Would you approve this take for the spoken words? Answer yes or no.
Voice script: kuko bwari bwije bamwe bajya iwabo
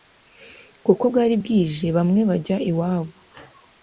yes